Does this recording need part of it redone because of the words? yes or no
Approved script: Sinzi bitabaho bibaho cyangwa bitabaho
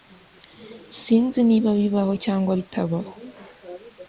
yes